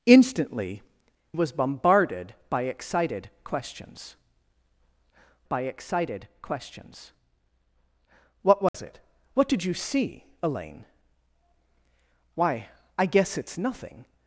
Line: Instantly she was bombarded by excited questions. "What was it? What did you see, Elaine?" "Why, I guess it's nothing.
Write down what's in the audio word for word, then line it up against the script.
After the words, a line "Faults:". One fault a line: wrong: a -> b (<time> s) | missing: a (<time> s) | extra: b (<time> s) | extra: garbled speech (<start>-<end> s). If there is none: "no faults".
Instantly was bombarded by excited questions by excited questions. "What was it? What did you see, Elaine?" "Why, I guess it's nothing.
Faults:
missing: she (0.8 s)
extra: by excited questions (5.5 s)